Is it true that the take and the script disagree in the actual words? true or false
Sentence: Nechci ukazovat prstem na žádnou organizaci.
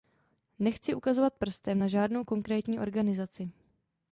true